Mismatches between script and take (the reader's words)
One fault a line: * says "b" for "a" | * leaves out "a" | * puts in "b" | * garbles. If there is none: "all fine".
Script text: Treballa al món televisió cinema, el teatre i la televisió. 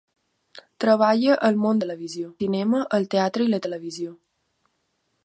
all fine